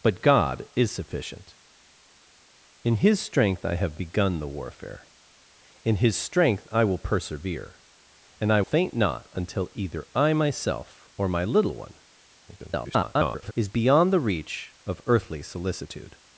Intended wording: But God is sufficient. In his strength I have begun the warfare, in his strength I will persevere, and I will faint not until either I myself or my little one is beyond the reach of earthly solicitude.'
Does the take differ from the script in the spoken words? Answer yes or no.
yes